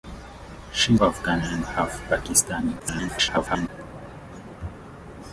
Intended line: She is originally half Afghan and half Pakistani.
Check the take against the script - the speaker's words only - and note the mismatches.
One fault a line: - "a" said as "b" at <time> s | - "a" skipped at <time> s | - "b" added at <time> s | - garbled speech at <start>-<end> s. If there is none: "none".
- "is originally half" skipped at 0.9 s
- garbled speech at 2.8-3.7 s